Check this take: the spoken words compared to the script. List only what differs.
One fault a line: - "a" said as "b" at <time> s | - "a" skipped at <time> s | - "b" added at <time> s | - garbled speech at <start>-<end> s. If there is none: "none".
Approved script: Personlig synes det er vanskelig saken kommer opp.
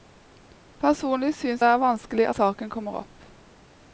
none